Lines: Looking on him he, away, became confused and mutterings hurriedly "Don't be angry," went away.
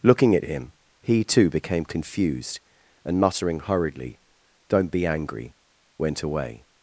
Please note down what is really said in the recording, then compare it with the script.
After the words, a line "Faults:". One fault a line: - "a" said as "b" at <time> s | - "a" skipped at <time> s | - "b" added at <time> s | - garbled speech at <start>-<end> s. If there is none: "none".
Looking at him he, too, became confused and muttering hurriedly "Don't be angry," went away.
Faults:
- "on" said as "at" at 0.3 s
- "away" said as "too" at 1.2 s
- "mutterings" said as "muttering" at 3.2 s